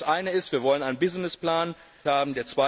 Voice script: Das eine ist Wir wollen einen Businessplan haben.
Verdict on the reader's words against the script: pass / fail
pass